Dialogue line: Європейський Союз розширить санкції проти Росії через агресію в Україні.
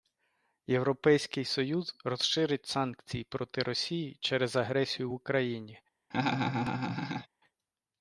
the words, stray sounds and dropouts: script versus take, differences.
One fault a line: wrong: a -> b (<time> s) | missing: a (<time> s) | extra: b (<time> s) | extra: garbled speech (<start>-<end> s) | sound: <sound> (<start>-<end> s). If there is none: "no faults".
sound: laugh (6.1-7.3 s)